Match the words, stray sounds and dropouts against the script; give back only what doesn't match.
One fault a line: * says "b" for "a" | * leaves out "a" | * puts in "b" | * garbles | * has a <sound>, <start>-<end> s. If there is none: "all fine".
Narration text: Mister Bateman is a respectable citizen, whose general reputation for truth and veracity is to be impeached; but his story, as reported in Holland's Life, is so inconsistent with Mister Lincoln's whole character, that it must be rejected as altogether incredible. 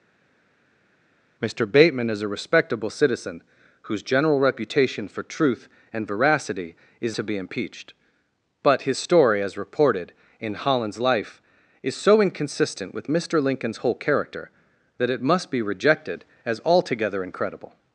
all fine